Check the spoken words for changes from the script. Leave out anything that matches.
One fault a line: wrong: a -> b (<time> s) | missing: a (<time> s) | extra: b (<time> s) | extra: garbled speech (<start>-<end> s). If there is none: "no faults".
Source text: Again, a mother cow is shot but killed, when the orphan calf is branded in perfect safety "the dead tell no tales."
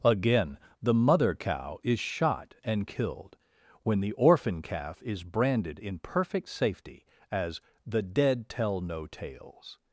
wrong: a -> the (0.8 s)
wrong: but -> and (2.6 s)
extra: as (7.3 s)